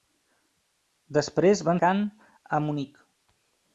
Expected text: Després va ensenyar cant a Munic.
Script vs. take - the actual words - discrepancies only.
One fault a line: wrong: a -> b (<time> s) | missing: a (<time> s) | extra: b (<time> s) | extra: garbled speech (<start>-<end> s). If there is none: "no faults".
missing: ensenyar (1.8 s)